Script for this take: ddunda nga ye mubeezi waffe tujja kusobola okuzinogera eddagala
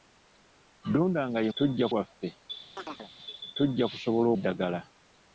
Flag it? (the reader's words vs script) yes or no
yes